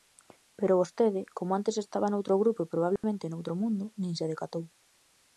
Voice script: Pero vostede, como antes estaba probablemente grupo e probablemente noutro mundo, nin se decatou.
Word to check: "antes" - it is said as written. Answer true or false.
true